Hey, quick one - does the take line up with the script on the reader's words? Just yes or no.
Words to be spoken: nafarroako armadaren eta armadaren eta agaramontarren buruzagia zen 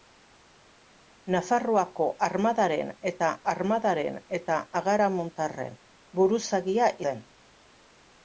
yes